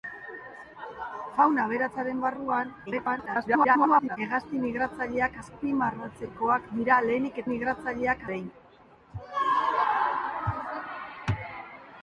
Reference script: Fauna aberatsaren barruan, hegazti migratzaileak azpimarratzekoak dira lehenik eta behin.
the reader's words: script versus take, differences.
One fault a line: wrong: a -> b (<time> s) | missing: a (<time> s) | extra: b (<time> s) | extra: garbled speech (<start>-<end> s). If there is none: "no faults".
extra: garbled speech (2.9-4.2 s)
wrong: eta -> migratzaileak (7.5 s)